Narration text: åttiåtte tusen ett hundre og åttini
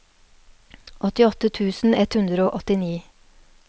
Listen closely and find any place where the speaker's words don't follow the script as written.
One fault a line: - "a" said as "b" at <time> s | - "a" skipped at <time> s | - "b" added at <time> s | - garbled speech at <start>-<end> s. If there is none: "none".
none